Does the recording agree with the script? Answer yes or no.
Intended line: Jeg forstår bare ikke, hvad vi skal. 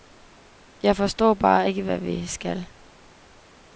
yes